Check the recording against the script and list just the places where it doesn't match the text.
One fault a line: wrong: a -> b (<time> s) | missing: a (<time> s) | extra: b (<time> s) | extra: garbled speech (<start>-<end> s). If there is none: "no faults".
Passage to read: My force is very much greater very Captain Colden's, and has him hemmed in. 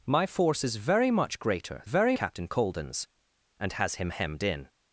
no faults